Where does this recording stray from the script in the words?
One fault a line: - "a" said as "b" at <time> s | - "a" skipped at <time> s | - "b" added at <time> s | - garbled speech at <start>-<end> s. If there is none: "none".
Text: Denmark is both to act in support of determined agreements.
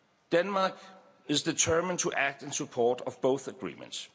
- "both" said as "determined" at 1.4 s
- "determined" said as "both" at 3.2 s